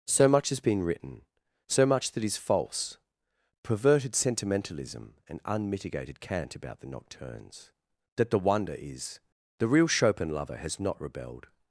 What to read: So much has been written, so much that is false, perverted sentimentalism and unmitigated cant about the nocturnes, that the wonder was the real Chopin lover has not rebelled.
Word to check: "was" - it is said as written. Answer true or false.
false